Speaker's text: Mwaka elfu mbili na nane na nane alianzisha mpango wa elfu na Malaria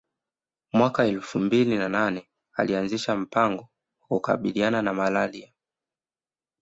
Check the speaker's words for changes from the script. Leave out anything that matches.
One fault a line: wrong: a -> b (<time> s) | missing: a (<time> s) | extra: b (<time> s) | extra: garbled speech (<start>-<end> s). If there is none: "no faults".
missing: na nane (2.3 s)
wrong: elfu -> kukabiliana (4.1 s)